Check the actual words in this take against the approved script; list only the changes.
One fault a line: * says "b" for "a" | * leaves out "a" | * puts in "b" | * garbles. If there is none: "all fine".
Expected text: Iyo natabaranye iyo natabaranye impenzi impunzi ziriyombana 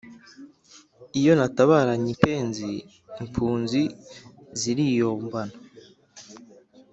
* leaves out "iyo natabaranye"